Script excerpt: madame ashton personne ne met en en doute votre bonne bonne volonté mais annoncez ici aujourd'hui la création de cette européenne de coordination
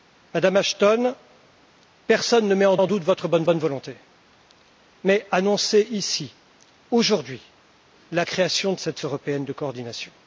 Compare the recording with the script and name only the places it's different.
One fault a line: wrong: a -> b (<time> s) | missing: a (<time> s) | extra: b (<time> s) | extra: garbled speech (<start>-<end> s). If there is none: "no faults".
no faults